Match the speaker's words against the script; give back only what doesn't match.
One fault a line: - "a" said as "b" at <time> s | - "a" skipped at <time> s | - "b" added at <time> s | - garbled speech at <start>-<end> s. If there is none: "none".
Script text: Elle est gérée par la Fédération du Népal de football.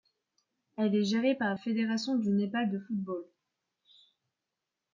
- "la" skipped at 1.6 s